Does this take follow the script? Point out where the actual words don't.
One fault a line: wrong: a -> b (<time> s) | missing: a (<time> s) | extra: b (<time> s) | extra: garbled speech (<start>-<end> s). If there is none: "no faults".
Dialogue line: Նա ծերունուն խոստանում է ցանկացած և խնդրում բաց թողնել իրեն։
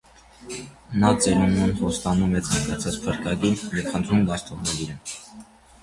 extra: փրկագին (3.1 s)